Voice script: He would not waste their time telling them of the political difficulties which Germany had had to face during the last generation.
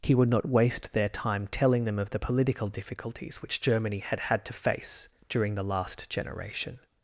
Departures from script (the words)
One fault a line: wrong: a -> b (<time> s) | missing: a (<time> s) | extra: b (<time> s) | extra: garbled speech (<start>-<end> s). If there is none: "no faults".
no faults